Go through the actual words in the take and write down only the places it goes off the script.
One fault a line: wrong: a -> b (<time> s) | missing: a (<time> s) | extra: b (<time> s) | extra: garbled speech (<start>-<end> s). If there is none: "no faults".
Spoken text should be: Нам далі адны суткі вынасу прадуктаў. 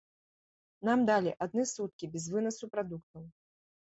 extra: без (2.1 s)